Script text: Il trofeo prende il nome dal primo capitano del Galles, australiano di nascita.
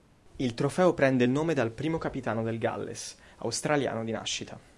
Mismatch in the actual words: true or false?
false